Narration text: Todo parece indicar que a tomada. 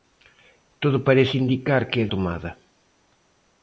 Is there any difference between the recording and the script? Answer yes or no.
no